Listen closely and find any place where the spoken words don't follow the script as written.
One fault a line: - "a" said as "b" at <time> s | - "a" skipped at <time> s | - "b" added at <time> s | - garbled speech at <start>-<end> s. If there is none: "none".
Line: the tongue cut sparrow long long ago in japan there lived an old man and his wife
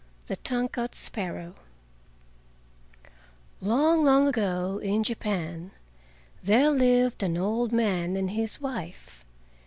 none